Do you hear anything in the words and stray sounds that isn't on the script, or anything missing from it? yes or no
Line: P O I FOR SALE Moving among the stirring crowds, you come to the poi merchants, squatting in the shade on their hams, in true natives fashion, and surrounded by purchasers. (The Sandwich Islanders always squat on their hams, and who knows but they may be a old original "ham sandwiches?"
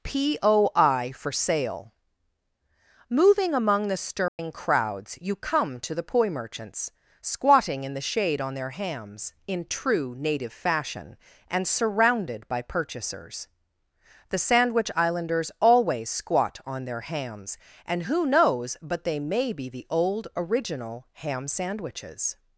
yes